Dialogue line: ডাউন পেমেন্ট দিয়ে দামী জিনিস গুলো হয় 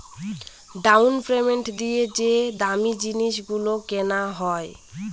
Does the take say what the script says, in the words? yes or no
no